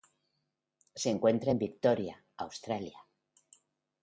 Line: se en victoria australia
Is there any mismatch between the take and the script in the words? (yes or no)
yes